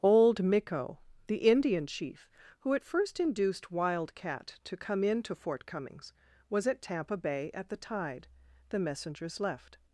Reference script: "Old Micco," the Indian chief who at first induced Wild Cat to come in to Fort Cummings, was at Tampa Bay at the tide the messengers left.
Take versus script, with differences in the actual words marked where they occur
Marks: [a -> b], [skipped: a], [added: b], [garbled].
"Old Micco," the Indian chief who at first induced Wild Cat to come in to Fort Cummings, was at Tampa Bay at the tide the messengers left.